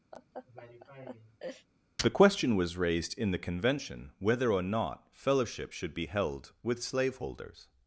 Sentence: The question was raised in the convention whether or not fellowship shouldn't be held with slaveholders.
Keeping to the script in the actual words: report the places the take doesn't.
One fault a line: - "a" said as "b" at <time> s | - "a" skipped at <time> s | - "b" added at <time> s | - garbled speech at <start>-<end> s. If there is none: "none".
- "shouldn't" said as "should" at 5.7 s